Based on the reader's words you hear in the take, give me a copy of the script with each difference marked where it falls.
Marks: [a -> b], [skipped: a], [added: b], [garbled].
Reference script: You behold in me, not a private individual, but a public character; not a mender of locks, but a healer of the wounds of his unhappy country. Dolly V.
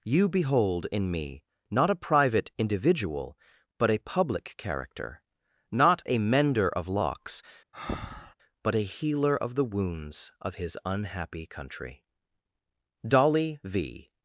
You behold in me, not a private individual, but a public character; not a mender of locks, but a healer of the wounds of his unhappy country. Dolly V.